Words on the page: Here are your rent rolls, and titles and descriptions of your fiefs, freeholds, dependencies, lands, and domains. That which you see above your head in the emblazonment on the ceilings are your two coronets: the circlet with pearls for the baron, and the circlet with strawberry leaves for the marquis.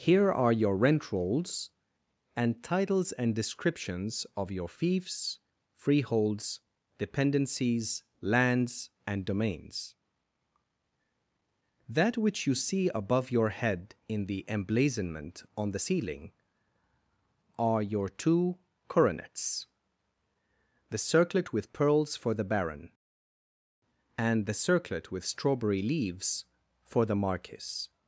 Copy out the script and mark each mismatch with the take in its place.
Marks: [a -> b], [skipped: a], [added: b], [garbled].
Here are your rent rolls, and titles and descriptions of your fiefs, freeholds, dependencies, lands, and domains. That which you see above your head in the emblazonment on the [ceilings -> ceiling] are your two coronets: the circlet with pearls for the baron, and the circlet with strawberry leaves for the marquis.